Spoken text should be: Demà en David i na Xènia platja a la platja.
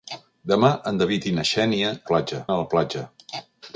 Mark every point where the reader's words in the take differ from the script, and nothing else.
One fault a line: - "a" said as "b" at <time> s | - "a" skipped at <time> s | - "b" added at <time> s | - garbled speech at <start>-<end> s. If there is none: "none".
none